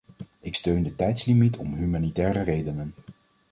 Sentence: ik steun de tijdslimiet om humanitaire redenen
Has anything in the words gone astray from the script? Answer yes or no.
no